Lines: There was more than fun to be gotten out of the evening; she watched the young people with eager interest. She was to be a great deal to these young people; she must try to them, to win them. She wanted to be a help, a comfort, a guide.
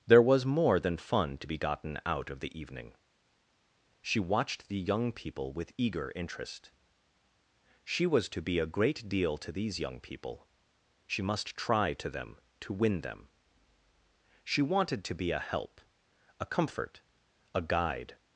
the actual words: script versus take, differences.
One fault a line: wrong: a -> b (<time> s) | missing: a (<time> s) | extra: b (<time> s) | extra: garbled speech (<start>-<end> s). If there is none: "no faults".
no faults